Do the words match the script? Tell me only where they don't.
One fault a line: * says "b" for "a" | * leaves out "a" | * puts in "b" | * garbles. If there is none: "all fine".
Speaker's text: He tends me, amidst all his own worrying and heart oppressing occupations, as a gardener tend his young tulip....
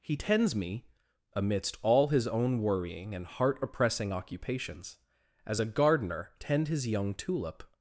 all fine